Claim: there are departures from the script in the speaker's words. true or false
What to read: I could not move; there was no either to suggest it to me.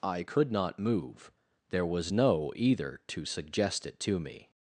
false